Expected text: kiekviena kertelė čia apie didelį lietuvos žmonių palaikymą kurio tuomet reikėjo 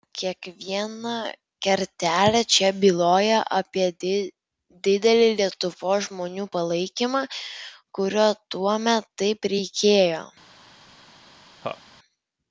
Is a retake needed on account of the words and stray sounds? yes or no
yes